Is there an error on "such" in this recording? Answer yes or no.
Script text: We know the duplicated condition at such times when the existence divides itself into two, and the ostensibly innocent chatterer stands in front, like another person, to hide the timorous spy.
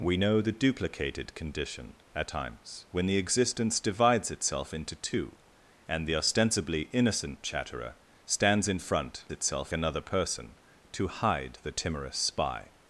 yes